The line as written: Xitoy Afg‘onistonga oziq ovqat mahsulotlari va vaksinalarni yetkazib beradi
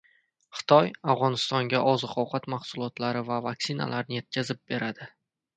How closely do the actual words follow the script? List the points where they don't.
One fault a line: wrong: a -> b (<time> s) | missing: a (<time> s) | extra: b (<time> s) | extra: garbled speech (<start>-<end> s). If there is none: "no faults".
no faults